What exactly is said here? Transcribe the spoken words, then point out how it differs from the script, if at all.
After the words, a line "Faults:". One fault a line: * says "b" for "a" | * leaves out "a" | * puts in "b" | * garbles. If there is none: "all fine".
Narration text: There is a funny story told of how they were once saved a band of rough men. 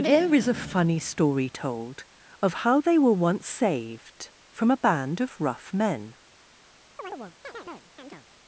There is a funny story told of how they were once saved from a band of rough men.
Faults:
* puts in "from"